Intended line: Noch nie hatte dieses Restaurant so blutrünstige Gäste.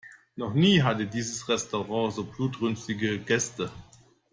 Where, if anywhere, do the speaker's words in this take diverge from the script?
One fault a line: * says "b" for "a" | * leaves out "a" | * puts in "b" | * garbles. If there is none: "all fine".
all fine